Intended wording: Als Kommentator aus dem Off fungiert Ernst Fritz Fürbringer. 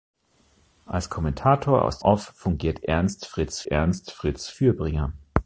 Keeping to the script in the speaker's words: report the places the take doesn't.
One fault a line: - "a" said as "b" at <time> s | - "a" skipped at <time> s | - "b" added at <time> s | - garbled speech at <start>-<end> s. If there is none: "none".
- "dem" skipped at 2.0 s
- "Ernst Fritz" added at 3.6 s